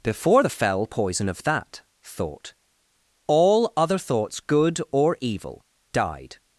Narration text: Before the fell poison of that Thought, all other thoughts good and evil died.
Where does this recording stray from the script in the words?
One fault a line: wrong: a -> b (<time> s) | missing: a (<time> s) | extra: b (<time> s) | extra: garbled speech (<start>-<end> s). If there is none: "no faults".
wrong: and -> or (4.9 s)